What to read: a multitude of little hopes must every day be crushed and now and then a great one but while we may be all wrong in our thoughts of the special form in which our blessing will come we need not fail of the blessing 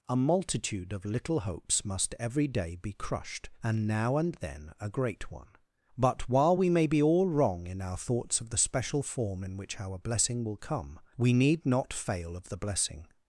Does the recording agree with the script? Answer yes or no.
yes